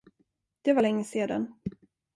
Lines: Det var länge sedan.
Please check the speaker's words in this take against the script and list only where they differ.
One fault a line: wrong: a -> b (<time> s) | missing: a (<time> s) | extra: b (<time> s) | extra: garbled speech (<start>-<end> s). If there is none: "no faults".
no faults